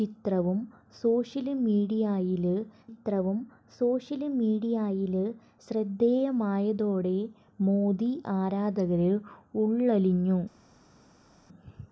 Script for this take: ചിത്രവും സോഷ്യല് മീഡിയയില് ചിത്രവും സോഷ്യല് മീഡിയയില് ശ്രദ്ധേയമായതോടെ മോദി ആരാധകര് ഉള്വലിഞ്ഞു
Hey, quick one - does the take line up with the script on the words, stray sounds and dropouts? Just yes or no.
yes